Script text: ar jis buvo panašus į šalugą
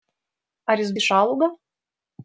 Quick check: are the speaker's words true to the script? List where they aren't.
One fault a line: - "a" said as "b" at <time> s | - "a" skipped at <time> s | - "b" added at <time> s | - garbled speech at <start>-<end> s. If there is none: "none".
- "buvo panašus" skipped at 0.9 s